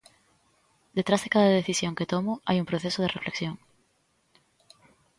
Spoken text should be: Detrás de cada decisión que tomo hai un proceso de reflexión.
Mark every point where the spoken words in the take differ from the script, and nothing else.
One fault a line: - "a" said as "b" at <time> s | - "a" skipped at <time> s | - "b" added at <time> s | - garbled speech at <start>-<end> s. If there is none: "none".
none